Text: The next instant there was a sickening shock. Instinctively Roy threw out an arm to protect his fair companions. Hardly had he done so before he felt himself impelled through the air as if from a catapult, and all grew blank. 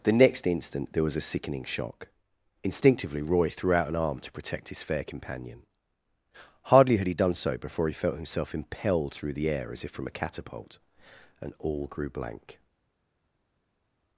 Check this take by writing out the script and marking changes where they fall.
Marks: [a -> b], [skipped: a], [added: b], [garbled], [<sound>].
The next instant there was a sickening shock. Instinctively Roy threw out an arm to protect his fair [companions. -> companion] Hardly had he done so before he felt himself impelled through the air as if from a catapult, and all grew blank.